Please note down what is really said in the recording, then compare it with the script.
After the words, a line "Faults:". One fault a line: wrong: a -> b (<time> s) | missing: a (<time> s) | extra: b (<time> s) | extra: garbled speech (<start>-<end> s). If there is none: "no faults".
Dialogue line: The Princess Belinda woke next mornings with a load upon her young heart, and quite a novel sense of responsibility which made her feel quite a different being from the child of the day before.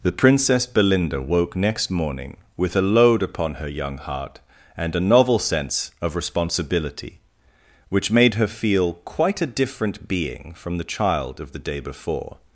The Princess Belinda woke next morning with a load upon her young heart, and a novel sense of responsibility which made her feel quite a different being from the child of the day before.
Faults:
wrong: mornings -> morning (1.9 s)
missing: quite (5.0 s)